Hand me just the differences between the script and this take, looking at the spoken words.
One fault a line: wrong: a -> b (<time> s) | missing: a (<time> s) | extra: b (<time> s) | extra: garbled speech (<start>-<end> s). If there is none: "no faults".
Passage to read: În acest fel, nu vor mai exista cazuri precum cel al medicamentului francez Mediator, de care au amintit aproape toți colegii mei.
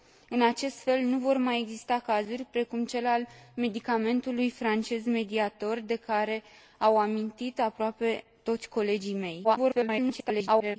extra: garbled speech (9.4-10.8 s)